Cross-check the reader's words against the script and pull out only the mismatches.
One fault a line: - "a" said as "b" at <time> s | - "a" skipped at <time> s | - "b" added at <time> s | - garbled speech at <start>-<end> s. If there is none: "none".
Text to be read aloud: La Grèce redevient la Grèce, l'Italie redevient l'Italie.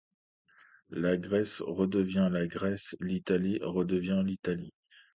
none